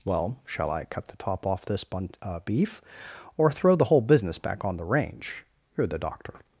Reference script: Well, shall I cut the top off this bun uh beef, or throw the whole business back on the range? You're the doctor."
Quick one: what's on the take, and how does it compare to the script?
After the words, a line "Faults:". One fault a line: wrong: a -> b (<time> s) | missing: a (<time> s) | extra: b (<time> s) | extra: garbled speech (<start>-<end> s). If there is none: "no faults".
Well, shall I cut the top off this bun uh beef, or throw the whole business back on the range? You're the doctor."
Faults:
no faults